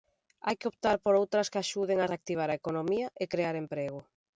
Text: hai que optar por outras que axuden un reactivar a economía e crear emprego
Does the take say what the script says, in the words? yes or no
no